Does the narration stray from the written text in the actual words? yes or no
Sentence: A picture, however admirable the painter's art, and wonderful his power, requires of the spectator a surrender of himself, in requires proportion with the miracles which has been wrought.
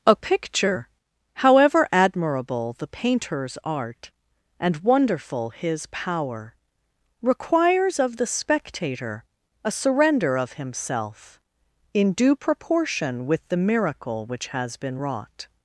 yes